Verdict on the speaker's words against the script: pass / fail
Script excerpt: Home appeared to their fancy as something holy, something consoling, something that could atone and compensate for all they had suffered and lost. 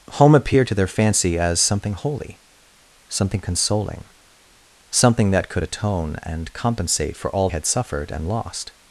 fail